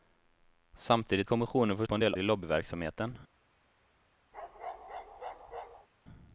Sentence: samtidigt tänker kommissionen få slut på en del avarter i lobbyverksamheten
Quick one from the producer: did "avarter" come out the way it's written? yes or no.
no